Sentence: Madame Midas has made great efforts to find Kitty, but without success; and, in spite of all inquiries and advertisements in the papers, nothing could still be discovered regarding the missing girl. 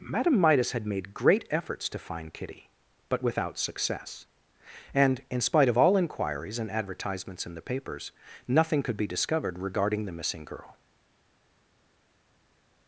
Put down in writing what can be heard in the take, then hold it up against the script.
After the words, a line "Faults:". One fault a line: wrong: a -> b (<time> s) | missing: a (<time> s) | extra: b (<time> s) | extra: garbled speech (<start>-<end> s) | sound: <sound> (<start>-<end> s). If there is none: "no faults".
Madame Midas had made great efforts to find Kitty, but without success; and, in spite of all inquiries and advertisements in the papers, nothing could be discovered regarding the missing girl.
Faults:
wrong: has -> had (0.7 s)
missing: still (8.9 s)